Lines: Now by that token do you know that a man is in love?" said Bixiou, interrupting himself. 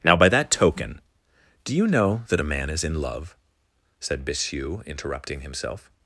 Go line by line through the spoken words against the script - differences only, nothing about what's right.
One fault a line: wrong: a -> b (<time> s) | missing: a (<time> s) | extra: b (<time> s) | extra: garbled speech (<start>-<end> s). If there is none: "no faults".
no faults